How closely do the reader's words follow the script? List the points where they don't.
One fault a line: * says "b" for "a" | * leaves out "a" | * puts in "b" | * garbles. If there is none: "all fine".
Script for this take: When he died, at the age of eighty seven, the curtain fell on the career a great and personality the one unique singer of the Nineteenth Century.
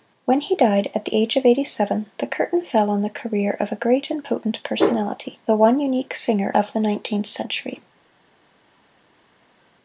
* puts in "of"
* puts in "potent"